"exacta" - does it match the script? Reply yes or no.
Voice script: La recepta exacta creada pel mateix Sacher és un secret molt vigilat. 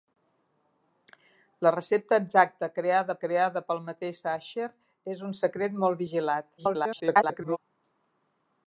yes